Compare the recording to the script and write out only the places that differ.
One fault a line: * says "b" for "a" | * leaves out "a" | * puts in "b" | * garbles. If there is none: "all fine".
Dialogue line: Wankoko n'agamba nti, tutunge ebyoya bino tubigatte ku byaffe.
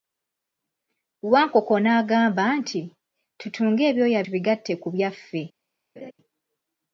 * leaves out "bino"